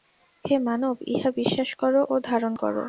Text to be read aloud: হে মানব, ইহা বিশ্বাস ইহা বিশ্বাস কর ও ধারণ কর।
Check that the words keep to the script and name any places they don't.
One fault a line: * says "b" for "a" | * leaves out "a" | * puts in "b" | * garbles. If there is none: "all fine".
* leaves out "ইহা বিশ্বাস"